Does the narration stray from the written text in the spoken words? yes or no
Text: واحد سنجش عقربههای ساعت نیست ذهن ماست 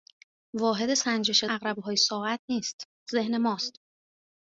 no